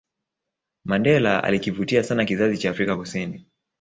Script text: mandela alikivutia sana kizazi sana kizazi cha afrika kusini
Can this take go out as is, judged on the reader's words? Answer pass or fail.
fail